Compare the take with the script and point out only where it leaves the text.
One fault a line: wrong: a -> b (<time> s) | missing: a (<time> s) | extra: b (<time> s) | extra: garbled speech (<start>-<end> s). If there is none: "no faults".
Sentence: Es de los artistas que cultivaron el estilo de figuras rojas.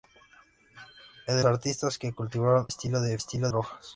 missing: los (1.4 s)
missing: el (2.7 s)
wrong: figuras -> estilo (3.1 s)